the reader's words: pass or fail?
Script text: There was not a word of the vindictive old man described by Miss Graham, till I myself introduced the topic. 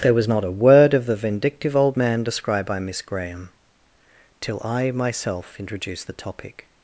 pass